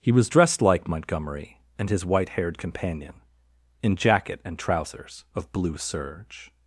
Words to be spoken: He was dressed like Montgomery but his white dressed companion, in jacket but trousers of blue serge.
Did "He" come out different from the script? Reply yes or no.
no